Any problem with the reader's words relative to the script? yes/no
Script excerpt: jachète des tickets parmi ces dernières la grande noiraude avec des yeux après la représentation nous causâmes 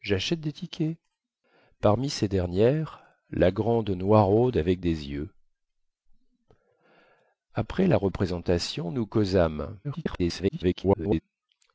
yes